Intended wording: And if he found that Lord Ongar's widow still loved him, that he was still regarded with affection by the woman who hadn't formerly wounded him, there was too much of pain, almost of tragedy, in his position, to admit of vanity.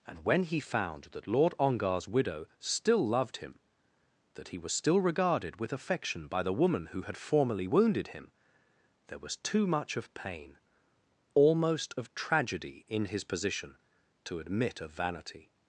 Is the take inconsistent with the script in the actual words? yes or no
yes